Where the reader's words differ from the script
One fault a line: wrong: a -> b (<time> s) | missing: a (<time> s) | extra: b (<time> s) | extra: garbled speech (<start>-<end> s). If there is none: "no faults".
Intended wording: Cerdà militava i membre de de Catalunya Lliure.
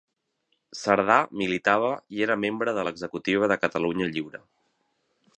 extra: era (2.3 s)
extra: l'executiva (2.9 s)